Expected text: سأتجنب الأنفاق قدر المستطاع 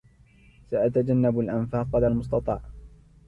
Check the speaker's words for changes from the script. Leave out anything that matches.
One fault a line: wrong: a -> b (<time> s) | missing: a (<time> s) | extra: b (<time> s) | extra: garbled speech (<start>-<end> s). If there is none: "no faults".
no faults